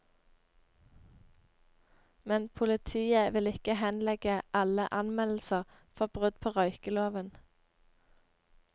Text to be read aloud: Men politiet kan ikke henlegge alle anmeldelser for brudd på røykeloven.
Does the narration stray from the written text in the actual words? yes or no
yes